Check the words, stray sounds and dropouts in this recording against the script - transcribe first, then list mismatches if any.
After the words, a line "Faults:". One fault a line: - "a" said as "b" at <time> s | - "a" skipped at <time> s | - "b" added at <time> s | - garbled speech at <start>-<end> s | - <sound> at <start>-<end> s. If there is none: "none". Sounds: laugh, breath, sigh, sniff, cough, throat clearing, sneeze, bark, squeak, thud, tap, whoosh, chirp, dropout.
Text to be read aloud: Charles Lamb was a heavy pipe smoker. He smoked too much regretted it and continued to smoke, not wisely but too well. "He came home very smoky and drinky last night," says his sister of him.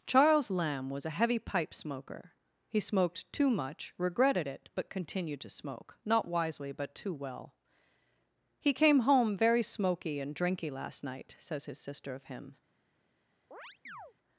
Charles Lamb was a heavy pipe smoker. He smoked too much regretted it but continued to smoke, not wisely but too well. "He came home very smoky and drinky last night," says his sister of him.
Faults:
- "and" said as "but" at 4.7 s
- chirp at 13.5-14.1 s